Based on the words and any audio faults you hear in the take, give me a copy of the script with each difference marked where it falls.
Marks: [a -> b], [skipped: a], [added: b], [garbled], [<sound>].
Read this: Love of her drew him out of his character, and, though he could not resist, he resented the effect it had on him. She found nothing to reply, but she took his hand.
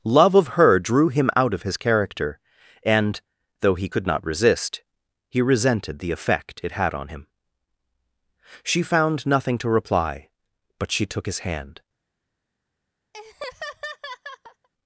Love of her drew him out of his character, and, though he could not resist, he resented the effect it had on him. She found nothing to reply, but she took his hand. [laugh]